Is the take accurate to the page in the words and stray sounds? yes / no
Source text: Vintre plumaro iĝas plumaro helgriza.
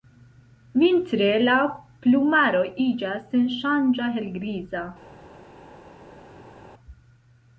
no